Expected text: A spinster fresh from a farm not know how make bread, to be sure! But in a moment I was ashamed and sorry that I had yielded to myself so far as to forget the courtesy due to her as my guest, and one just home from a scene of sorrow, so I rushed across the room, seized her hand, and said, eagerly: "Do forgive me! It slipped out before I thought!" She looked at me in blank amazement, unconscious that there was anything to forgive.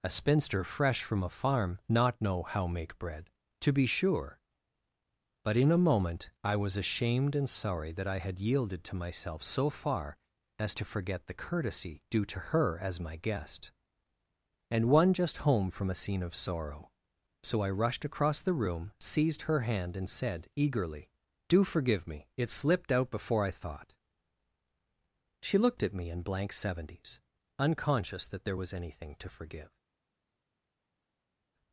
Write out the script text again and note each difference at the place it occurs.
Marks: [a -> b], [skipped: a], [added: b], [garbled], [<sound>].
A spinster fresh from a farm not know how make bread, to be sure! But in a moment I was ashamed and sorry that I had yielded to myself so far as to forget the courtesy due to her as my guest, and one just home from a scene of sorrow, so I rushed across the room, seized her hand, and said, eagerly: "Do forgive me! It slipped out before I thought!" She looked at me in blank [amazement, -> seventies] unconscious that there was anything to forgive.